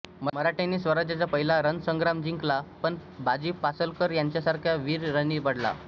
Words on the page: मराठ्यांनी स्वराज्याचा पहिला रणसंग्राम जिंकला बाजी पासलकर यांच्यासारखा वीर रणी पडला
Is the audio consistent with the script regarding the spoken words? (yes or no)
no